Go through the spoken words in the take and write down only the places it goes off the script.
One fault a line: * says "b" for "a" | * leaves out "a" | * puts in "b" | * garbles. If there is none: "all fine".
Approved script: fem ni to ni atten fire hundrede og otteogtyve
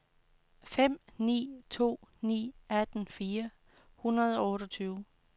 all fine